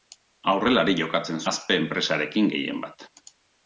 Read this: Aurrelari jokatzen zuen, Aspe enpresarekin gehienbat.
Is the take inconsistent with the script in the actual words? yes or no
yes